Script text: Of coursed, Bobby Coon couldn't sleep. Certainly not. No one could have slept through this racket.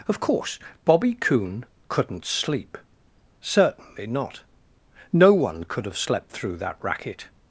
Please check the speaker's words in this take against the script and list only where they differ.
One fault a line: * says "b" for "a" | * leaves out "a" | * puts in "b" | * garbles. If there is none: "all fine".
* says "course" for "coursed"
* says "that" for "this"